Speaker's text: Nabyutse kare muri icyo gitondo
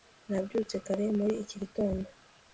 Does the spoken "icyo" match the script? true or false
false